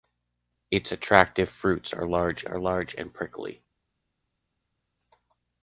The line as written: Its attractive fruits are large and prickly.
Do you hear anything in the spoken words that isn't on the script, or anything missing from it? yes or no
yes